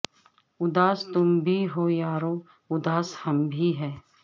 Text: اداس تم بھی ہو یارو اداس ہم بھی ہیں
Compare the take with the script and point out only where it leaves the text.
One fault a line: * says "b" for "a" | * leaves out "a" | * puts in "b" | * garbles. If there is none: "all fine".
all fine